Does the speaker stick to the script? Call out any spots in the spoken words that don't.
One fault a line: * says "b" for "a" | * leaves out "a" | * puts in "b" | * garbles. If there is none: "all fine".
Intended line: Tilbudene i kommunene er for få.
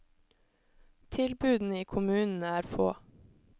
* leaves out "for"